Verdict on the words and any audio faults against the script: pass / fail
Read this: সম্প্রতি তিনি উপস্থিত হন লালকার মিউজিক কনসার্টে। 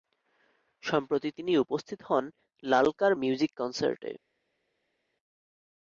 pass